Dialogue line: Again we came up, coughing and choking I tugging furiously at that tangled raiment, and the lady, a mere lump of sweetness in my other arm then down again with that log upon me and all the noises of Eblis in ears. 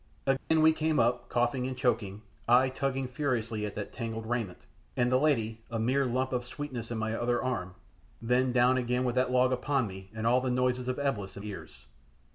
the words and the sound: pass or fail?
fail